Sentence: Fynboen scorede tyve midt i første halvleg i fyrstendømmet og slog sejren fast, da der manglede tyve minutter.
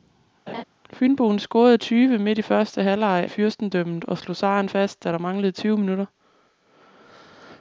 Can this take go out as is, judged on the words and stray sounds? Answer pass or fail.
fail